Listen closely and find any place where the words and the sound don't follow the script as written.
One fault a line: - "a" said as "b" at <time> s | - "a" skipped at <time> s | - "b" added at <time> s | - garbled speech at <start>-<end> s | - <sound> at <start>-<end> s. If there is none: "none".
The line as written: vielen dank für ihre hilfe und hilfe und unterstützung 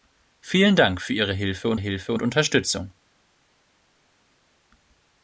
none